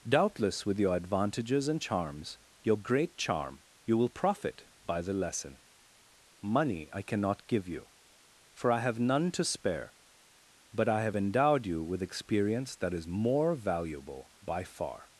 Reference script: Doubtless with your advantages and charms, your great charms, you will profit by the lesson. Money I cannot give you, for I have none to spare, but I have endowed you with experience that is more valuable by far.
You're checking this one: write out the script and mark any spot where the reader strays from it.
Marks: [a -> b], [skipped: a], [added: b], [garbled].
Doubtless with your advantages and charms, your great [charms, -> charm] you will profit by the lesson. Money I cannot give you, for I have none to spare, but I have endowed you with experience that is more valuable by far.